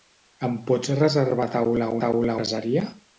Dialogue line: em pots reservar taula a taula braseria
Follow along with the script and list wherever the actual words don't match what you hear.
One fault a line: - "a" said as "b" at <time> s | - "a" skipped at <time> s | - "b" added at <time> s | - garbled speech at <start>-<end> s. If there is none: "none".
none